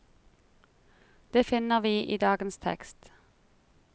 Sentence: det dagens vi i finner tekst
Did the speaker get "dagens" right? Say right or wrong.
wrong